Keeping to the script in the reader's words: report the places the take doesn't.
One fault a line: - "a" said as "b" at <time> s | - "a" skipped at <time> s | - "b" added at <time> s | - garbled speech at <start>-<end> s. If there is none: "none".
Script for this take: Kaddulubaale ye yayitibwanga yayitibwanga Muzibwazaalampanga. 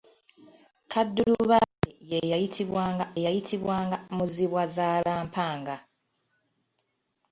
none